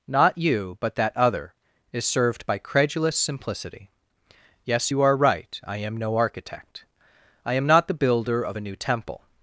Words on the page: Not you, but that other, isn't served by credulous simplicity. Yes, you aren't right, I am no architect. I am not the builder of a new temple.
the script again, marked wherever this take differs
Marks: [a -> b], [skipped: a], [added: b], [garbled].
Not you, but that other, [isn't -> is] served by credulous simplicity. Yes, you [aren't -> are] right, I am no architect. I am not the builder of a new temple.